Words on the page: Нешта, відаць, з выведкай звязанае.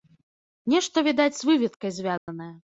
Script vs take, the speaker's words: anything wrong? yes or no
no